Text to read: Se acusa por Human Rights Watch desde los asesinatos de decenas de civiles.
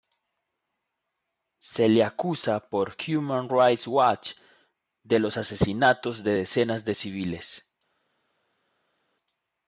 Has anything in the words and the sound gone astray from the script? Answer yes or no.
yes